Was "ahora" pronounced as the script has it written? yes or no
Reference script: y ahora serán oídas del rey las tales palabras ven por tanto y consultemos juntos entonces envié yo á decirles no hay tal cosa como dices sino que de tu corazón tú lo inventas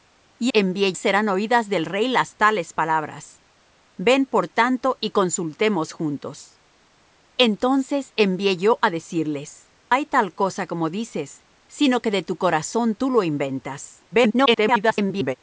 no